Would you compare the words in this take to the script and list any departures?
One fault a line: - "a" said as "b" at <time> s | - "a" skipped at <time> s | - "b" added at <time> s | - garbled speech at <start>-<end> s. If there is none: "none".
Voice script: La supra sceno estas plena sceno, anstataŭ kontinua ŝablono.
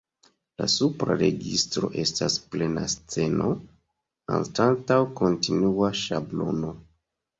- "sceno" said as "registro" at 1.2 s